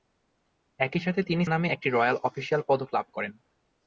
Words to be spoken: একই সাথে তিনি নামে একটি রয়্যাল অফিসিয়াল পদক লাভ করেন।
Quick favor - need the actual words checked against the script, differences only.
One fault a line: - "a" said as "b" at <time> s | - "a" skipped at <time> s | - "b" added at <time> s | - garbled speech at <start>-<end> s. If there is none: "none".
none